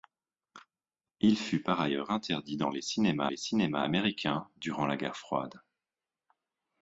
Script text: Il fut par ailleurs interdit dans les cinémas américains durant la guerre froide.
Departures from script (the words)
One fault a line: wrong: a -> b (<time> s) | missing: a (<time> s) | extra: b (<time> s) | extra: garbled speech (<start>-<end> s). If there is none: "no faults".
extra: les cinémas (3.3 s)